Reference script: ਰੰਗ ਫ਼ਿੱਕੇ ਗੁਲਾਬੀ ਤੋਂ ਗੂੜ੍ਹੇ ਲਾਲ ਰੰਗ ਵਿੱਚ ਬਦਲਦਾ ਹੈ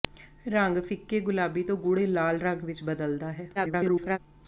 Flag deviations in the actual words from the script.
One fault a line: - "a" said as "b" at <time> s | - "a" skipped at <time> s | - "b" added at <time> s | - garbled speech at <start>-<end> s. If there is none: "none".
- garbled speech at 3.5-4.2 s